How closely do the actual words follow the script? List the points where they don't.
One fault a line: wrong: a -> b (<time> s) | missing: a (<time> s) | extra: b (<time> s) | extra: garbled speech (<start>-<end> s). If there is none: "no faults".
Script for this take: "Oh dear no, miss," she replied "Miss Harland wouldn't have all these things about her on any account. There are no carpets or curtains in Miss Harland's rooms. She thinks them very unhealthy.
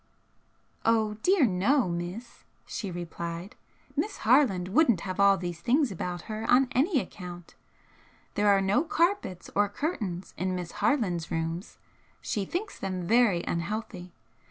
no faults